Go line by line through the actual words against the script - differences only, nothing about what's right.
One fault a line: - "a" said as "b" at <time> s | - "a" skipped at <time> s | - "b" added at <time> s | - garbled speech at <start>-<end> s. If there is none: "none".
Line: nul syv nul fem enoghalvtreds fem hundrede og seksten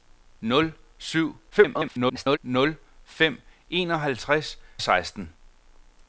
- garbled speech at 1.5-2.4 s
- "fem hundrede og" skipped at 4.6 s